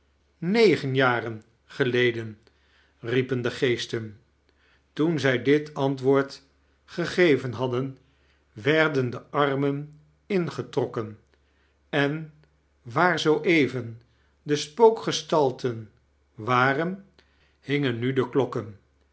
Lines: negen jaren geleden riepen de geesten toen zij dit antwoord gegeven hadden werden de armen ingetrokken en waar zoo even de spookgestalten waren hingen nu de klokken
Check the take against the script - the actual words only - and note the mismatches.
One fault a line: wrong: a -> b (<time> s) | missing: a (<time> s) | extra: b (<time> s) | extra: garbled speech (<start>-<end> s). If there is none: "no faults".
no faults